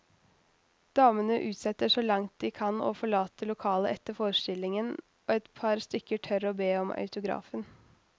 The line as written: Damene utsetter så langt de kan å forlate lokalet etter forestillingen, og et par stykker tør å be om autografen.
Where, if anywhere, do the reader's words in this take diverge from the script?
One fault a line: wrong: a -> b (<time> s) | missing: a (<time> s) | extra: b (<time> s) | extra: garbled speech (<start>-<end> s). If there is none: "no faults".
no faults